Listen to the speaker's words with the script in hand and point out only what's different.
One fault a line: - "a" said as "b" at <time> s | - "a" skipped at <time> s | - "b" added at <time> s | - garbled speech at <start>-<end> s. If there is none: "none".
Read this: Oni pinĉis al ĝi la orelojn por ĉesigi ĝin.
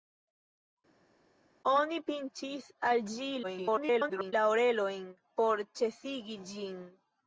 - garbled speech at 3.4-4.3 s